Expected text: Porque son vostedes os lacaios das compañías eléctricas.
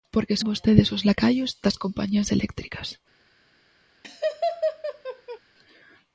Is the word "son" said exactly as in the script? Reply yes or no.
no